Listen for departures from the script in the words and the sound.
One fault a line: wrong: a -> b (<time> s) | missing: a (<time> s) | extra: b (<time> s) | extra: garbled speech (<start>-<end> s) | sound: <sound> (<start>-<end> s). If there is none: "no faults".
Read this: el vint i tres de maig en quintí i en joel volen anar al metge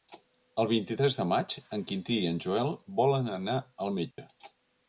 sound: dropout (4.1-4.2 s)